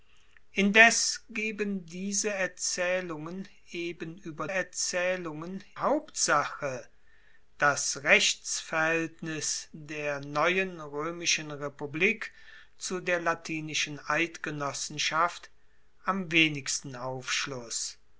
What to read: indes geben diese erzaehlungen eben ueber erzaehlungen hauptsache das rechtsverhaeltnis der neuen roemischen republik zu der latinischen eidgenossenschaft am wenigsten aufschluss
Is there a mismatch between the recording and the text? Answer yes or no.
no